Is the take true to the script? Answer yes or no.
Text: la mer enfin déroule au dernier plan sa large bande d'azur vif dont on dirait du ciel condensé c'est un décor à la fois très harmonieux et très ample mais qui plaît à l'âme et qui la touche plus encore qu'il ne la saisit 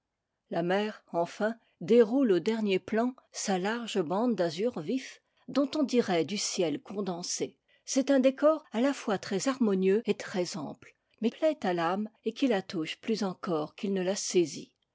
no